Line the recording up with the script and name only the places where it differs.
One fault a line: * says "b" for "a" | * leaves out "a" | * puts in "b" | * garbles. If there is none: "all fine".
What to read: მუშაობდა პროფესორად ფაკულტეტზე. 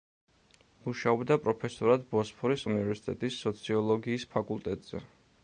* puts in "ბოსფორის უნივერსიტეტის სოციოლოგიის"